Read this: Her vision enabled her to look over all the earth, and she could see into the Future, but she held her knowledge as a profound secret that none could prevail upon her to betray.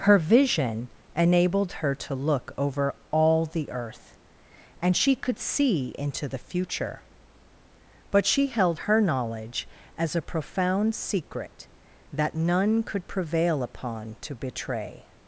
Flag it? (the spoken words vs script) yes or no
yes